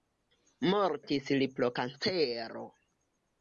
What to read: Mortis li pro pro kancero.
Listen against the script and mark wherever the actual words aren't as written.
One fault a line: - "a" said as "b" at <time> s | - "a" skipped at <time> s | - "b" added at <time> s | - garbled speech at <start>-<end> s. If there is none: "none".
- "pro" skipped at 1.7 s